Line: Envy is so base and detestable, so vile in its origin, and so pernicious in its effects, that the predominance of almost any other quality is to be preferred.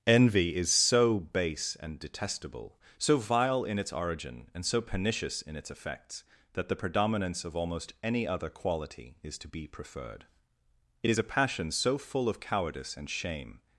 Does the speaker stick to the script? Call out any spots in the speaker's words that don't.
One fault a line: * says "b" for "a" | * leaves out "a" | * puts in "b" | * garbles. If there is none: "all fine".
* puts in "It is a passion so full of cowardice and shame"